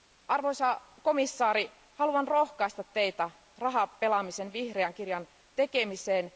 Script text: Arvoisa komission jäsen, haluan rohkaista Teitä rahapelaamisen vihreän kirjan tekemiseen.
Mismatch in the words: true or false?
false